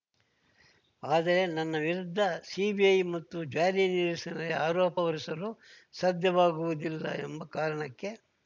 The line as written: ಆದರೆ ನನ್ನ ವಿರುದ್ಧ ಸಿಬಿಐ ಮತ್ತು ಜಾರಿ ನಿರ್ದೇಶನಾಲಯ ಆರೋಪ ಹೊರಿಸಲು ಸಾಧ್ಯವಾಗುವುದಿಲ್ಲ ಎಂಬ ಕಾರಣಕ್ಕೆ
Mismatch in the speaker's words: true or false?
false